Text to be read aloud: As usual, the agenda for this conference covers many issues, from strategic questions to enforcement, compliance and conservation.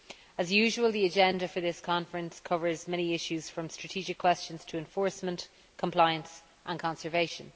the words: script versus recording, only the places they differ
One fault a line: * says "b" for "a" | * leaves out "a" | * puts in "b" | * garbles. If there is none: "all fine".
all fine